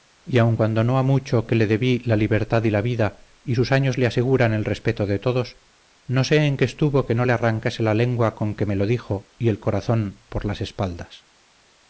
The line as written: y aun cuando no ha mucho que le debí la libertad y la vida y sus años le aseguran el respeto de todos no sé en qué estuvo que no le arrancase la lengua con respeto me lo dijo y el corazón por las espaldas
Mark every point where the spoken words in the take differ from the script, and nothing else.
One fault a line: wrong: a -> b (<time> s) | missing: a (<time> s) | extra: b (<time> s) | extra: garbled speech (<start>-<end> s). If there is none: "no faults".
wrong: respeto -> que (8.5 s)